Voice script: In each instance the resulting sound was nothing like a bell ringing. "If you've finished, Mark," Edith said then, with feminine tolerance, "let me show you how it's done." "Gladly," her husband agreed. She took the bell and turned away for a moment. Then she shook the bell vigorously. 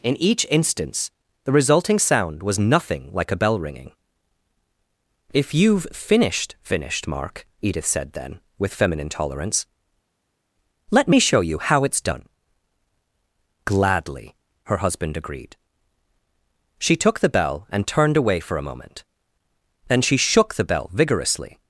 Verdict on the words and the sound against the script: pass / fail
fail